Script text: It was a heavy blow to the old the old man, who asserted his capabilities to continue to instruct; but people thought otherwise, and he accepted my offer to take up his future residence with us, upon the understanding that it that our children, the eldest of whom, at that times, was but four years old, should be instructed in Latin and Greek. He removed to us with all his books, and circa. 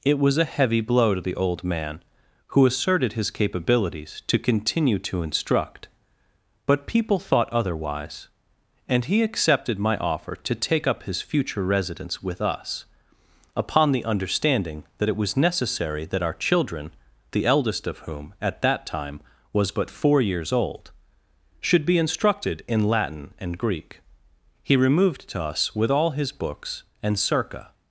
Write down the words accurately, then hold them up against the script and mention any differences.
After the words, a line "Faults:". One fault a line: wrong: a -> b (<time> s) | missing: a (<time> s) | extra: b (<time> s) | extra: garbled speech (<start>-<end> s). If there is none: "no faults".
It was a heavy blow to the old man, who asserted his capabilities to continue to instruct; but people thought otherwise, and he accepted my offer to take up his future residence with us, upon the understanding that it was necessary that our children, the eldest of whom, at that time, was but four years old, should be instructed in Latin and Greek. He removed to us with all his books, and circa.
Faults:
missing: the old (1.6 s)
extra: was necessary (15.2 s)
wrong: times -> time (18.9 s)